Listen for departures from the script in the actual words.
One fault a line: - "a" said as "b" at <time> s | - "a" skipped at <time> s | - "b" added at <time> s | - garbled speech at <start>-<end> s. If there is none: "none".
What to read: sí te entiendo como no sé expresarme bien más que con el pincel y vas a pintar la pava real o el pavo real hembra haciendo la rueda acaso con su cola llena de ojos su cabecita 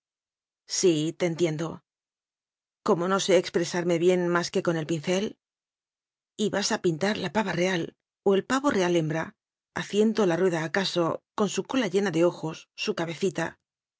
none